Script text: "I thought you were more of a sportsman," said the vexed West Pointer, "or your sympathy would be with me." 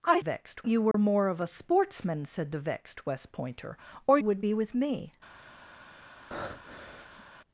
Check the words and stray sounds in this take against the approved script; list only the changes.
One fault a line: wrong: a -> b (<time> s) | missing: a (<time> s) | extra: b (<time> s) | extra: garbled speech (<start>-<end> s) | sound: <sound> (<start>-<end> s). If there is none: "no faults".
wrong: thought -> vexed (0.2 s)
sound: dropout (0.9-0.9 s)
missing: your sympathy (4.2 s)
sound: breath (6.3-7.2 s)